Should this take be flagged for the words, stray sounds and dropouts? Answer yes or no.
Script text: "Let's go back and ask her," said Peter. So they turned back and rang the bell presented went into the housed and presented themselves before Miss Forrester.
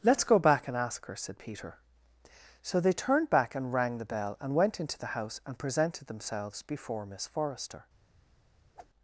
yes